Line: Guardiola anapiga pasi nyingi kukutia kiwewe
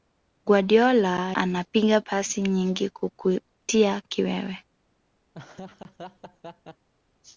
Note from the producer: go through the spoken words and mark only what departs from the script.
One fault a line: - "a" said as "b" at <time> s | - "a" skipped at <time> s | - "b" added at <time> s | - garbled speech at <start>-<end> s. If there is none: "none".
none